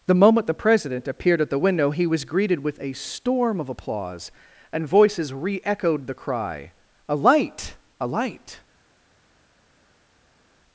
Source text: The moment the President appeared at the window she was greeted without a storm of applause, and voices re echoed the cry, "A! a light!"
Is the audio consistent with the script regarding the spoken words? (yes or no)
no